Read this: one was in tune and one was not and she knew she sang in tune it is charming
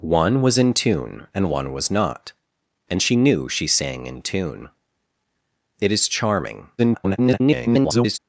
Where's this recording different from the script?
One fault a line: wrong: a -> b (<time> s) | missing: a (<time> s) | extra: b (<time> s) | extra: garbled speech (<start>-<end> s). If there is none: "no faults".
extra: garbled speech (6.8-8.2 s)